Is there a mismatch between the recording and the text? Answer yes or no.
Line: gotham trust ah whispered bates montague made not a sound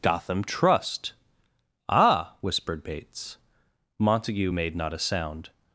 no